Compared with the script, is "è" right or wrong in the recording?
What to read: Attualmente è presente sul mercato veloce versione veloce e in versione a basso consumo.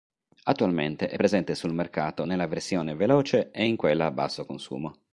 right